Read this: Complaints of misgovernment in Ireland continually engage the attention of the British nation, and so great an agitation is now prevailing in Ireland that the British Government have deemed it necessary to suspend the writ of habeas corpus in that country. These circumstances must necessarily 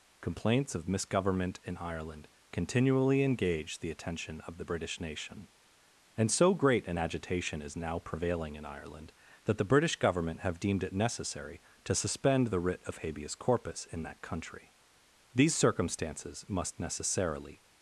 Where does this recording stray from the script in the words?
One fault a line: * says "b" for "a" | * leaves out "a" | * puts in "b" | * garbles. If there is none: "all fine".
all fine